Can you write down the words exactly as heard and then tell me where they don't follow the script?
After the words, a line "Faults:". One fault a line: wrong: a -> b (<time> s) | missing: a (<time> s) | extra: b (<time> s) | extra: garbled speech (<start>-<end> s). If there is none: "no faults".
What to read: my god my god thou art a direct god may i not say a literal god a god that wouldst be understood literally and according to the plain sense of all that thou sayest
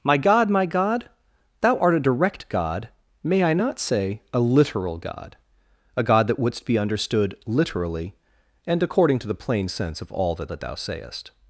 my god my god thou art a direct god may i not say a literal god a god that wouldst be understood literally and according to the plain sense of all that that thou sayest
Faults:
extra: that (10.5 s)